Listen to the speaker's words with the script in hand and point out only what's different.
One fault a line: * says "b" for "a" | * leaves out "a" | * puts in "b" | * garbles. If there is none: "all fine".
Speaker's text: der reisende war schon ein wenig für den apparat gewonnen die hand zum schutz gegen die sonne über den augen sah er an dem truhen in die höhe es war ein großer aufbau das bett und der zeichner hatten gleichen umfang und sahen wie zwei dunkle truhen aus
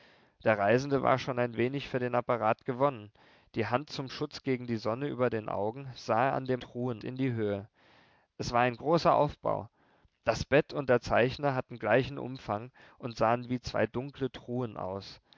all fine